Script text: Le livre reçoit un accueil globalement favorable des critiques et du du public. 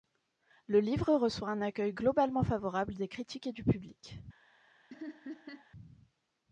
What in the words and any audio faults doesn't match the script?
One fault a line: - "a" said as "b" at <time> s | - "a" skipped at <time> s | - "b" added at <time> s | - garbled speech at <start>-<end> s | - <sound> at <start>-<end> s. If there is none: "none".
- "du" skipped at 3.6 s
- laugh at 4.9-5.7 s